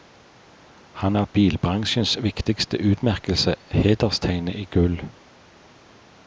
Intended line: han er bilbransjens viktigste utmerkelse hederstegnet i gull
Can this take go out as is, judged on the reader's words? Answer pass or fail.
pass